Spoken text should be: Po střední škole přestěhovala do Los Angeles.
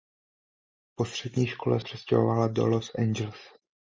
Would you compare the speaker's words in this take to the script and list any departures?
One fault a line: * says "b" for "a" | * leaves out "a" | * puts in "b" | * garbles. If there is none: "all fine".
all fine